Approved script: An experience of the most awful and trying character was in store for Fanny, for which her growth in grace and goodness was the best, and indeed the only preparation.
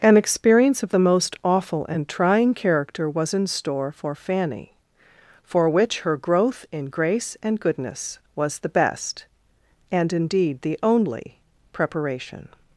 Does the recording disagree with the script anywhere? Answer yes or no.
no